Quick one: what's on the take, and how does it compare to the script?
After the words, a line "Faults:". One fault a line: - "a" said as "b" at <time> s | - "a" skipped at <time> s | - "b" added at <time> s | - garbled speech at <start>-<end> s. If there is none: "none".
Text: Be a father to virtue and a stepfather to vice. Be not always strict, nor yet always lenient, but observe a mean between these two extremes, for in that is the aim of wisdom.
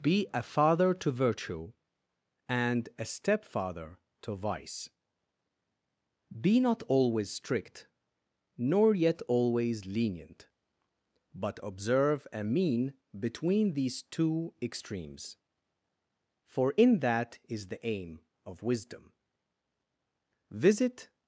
Be a father to virtue and a stepfather to vice. Be not always strict, nor yet always lenient, but observe a mean between these two extremes, for in that is the aim of wisdom. Visit
Faults:
- "Visit" added at 20.5 s